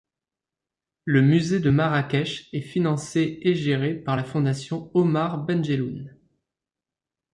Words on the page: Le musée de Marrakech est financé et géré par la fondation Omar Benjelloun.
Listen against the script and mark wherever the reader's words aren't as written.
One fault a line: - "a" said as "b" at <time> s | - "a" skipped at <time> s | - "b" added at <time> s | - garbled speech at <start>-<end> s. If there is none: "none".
none